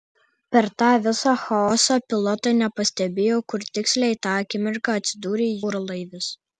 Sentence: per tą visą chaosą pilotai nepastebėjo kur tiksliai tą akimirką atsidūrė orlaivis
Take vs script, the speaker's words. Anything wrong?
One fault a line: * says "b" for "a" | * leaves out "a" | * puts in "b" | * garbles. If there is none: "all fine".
all fine